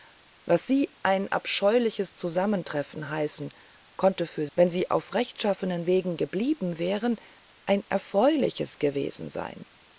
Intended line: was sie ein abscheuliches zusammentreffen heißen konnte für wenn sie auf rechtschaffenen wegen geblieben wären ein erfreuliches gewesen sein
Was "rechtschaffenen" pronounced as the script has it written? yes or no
yes